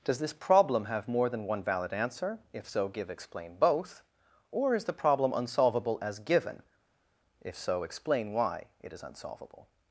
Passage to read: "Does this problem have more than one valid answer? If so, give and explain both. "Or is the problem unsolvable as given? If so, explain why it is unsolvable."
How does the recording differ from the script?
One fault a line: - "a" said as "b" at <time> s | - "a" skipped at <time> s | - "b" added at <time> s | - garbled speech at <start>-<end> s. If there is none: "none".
- "and" skipped at 3.1 s